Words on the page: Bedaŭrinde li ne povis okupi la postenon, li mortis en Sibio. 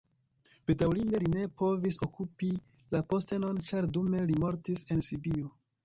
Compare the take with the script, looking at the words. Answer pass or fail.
fail